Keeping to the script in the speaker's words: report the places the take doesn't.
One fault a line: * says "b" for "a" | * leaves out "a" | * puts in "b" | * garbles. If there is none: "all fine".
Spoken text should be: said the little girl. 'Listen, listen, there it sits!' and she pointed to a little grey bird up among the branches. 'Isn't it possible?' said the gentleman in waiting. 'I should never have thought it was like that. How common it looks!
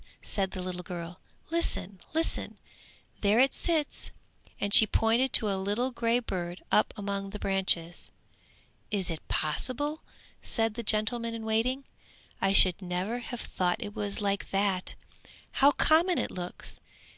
* says "Is" for "Isn't"